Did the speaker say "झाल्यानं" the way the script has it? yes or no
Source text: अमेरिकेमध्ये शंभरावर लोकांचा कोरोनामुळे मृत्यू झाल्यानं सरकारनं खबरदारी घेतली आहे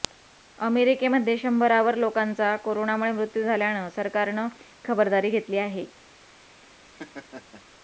yes